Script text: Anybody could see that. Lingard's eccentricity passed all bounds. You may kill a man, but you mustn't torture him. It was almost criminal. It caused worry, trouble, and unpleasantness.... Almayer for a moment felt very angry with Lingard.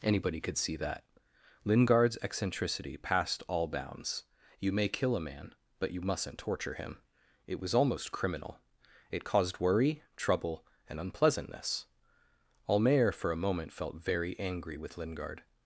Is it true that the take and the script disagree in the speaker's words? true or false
false